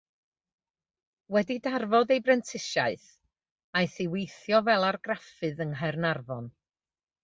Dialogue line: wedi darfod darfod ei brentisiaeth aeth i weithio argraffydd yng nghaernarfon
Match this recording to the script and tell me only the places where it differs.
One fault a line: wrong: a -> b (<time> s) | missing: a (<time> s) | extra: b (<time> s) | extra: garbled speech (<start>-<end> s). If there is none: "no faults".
missing: darfod (2.1 s)
extra: fel (4.7 s)